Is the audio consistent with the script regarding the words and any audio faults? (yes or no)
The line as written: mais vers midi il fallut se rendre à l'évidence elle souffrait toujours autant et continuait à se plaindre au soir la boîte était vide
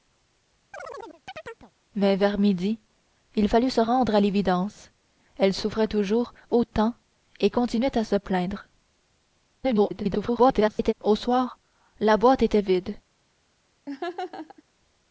no